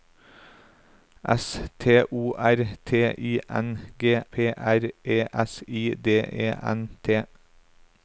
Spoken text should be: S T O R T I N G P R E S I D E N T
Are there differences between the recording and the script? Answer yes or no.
no